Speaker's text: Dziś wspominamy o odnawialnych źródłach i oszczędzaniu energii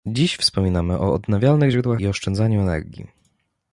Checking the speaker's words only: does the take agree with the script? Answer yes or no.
yes